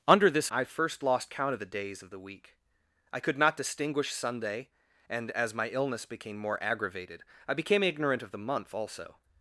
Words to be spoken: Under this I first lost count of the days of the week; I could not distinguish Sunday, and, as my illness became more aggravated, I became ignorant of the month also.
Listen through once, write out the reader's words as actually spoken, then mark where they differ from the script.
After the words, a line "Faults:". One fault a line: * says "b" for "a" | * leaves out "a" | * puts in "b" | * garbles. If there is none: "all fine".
Under this I first lost count of the days of the week; I could not distinguish Sunday, and, as my illness became more aggravated, I became ignorant of the month also.
Faults:
all fine